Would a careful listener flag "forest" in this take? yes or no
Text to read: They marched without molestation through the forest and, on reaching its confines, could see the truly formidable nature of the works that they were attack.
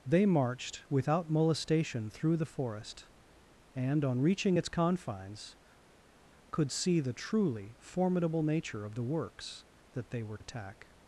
no